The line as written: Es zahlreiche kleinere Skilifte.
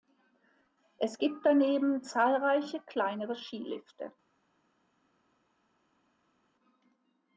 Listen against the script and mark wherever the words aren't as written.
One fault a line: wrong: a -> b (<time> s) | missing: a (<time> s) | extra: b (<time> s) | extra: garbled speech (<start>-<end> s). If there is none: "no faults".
extra: gibt daneben (1.2 s)